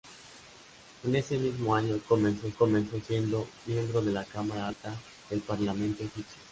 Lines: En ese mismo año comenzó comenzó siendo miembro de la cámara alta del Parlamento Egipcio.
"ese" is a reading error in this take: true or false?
false